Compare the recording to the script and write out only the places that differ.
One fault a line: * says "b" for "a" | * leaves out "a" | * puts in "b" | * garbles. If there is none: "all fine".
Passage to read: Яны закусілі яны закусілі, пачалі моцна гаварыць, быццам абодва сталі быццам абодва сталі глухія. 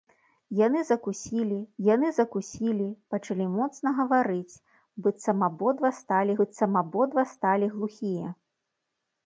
all fine